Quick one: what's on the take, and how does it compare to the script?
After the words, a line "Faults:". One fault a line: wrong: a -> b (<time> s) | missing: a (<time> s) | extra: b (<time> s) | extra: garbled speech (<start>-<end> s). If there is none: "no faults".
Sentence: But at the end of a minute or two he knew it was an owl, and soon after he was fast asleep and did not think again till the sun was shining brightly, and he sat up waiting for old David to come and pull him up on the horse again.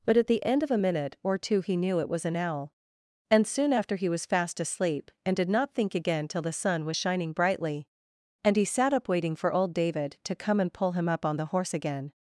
But at the end of a minute or two he knew it was an owl, and soon after he was fast asleep and did not think again till the sun was shining brightly, and he sat up waiting for old David to come and pull him up on the horse again.
Faults:
no faults